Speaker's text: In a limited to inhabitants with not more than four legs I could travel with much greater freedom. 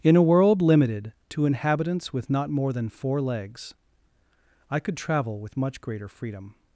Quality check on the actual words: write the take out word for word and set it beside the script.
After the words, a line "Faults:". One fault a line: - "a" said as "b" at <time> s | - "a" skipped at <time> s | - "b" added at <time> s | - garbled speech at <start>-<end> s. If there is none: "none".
In a world limited to inhabitants with not more than four legs I could travel with much greater freedom.
Faults:
- "world" added at 0.2 s